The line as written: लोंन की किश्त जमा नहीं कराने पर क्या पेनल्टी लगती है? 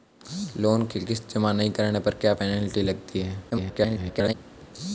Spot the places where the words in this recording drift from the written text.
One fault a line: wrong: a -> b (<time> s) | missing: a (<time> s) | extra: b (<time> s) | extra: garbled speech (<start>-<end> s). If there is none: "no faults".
extra: garbled speech (3.5-4.3 s)